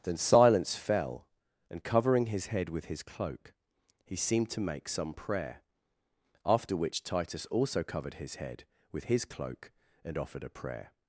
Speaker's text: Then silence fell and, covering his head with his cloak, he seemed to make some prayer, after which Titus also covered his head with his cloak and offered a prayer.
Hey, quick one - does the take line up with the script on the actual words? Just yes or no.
yes